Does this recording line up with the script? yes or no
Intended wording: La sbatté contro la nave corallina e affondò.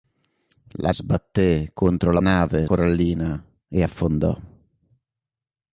yes